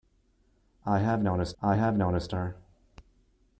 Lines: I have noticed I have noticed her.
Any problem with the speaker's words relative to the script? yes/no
no